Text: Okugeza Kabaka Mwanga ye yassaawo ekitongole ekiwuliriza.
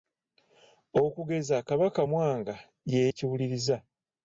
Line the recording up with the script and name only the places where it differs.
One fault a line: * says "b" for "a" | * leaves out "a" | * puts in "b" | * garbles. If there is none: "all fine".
* leaves out "yassaawo ekitongole"